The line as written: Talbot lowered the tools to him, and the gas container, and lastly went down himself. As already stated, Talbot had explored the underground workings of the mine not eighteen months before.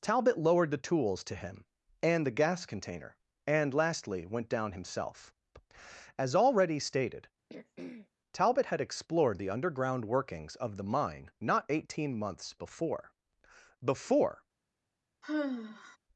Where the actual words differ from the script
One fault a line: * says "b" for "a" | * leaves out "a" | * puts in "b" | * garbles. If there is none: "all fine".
* puts in "before"